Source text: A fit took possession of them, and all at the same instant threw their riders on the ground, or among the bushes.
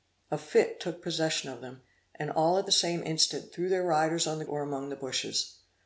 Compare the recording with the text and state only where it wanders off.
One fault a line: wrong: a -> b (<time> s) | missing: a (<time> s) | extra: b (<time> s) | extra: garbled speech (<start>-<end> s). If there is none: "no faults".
missing: ground (4.4 s)